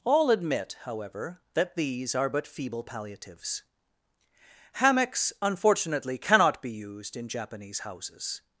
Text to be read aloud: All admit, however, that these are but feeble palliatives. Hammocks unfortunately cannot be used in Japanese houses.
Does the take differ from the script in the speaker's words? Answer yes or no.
no